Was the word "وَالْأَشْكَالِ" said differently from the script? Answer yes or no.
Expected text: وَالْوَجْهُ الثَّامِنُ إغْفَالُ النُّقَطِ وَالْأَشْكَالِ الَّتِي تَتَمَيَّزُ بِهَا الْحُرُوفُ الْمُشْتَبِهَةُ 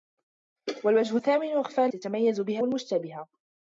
yes